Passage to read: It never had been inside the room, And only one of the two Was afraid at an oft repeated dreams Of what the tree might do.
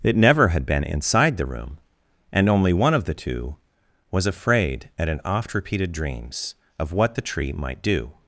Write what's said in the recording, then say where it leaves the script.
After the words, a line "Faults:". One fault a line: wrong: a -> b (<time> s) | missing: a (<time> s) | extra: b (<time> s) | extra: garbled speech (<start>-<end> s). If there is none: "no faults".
It never had been inside the room, And only one of the two Was afraid at an oft repeated dreams Of what the tree might do.
Faults:
no faults